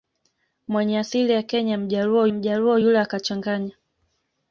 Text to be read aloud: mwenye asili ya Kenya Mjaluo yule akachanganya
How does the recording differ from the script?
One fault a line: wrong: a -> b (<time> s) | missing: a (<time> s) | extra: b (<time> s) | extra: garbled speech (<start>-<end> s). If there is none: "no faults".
extra: Mjaluo (2.3 s)